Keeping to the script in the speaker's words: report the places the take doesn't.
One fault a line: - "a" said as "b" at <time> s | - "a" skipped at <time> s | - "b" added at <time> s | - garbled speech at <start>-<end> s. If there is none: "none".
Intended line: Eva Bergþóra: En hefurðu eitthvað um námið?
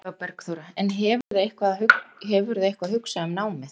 - "hugsað" added at 2.9 s